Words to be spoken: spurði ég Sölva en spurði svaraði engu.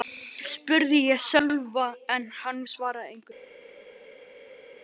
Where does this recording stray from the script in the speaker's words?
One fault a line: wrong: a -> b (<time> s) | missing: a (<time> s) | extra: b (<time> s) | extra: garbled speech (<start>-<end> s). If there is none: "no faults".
wrong: spurði -> hann (2.4 s)